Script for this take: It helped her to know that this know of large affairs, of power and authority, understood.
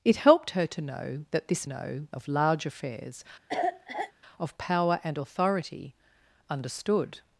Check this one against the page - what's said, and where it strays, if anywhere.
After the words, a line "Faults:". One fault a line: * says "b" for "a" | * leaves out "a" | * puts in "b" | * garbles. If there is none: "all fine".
It helped her to know that this know of large affairs, of power and authority, understood.
Faults:
all fine